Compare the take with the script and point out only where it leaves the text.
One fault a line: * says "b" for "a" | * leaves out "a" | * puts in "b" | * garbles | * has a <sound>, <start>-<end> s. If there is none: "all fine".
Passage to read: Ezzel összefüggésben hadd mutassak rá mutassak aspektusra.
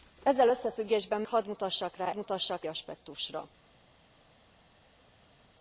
all fine